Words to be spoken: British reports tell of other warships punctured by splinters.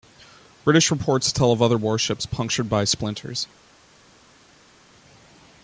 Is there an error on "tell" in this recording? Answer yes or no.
no